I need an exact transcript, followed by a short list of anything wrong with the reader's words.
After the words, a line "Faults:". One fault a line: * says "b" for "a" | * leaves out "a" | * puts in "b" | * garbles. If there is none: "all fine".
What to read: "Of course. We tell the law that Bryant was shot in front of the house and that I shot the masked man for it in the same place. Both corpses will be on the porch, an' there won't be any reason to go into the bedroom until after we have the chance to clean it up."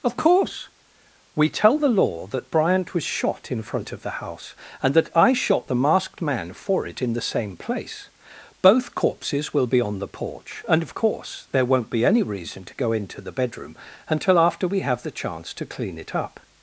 "Of course. We tell the law that Bryant was shot in front of the house and that I shot the masked man for it in the same place. Both corpses will be on the porch, and of course' there won't be any reason to go into the bedroom until after we have the chance to clean it up."
Faults:
* says "and of course" for "an"